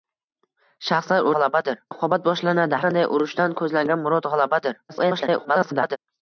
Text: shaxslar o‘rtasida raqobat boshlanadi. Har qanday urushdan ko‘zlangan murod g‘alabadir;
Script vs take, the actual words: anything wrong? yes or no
yes